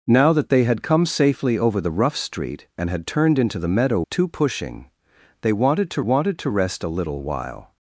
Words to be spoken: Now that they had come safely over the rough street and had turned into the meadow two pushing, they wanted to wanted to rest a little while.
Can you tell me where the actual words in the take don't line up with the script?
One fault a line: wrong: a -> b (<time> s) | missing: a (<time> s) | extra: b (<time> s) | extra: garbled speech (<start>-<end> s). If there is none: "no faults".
no faults